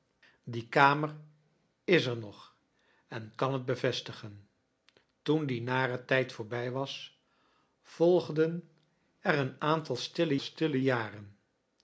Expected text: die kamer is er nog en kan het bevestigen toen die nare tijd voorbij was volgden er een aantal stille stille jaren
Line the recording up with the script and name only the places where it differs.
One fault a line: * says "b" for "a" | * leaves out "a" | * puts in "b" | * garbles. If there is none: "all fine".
all fine